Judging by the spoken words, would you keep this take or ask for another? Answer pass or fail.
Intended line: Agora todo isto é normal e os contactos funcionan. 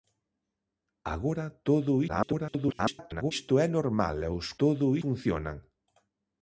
fail